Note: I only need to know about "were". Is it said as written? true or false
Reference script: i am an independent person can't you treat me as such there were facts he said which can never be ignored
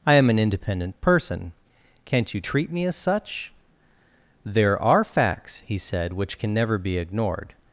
false